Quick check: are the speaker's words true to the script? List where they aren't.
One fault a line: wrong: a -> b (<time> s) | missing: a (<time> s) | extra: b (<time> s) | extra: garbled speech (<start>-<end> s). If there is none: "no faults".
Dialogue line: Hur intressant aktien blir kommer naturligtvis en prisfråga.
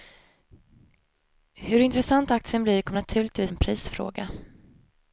no faults